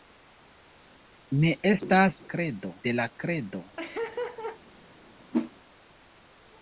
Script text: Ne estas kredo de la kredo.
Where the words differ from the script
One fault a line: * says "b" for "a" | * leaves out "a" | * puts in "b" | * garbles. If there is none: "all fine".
all fine